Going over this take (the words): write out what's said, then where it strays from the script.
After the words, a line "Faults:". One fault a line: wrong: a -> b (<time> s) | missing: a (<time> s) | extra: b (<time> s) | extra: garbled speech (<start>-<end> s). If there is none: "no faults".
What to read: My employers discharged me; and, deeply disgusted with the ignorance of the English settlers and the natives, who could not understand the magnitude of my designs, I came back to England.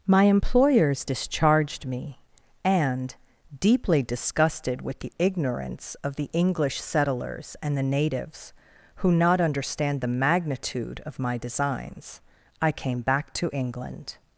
My employers discharged me; and, deeply disgusted with the ignorance of the English settlers and the natives, who not understand the magnitude of my designs, I came back to England.
Faults:
missing: could (9.1 s)